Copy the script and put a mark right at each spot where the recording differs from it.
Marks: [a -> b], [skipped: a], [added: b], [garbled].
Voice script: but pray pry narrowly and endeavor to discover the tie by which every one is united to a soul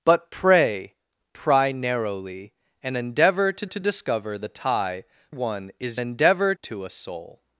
but pray pry narrowly and endeavor to [added: to] discover the tie [skipped: by which every] one is [united -> endeavor] to a soul